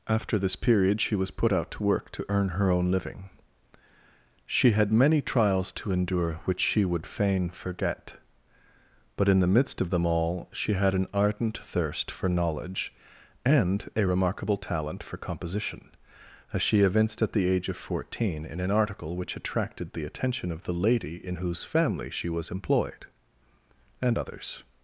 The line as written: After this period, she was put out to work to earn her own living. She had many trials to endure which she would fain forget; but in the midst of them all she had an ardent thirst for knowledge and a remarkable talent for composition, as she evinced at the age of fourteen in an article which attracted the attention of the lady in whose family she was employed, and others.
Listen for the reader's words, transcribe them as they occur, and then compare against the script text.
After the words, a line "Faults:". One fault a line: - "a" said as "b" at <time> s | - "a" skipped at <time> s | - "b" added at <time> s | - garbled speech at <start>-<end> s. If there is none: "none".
After this period, she was put out to work to earn her own living. She had many trials to endure which she would fain forget; but in the midst of them all she had an ardent thirst for knowledge and a remarkable talent for composition, as she evinced at the age of fourteen in an article which attracted the attention of the lady in whose family she was employed, and others.
Faults:
none